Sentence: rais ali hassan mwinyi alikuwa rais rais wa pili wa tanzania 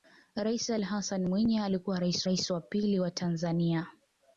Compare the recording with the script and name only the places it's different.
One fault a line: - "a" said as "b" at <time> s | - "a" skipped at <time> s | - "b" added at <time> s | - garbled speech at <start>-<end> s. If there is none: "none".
none